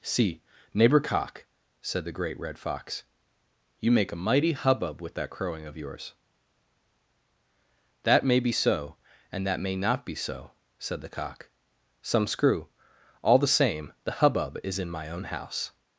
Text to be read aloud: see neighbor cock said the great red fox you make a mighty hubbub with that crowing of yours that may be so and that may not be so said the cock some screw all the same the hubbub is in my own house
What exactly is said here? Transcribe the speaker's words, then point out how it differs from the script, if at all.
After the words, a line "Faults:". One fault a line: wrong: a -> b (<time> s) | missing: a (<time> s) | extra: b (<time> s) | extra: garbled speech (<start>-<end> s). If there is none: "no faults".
see neighbor cock said the great red fox you make a mighty hubbub with that crowing of yours that may be so and that may not be so said the cock some screw all the same the hubbub is in my own house
Faults:
no faults